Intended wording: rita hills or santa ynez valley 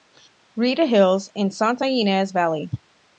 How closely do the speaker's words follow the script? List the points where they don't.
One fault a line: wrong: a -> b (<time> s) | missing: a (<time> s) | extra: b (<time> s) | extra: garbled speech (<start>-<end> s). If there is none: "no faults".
wrong: or -> and (1.4 s)